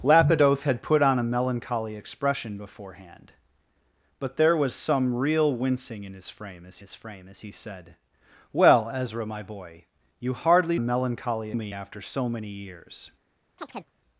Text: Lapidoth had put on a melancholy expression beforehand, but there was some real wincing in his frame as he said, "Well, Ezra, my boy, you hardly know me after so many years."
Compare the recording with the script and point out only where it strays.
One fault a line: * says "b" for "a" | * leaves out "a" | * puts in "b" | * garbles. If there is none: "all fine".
* puts in "his frame as"
* says "melancholy" for "know"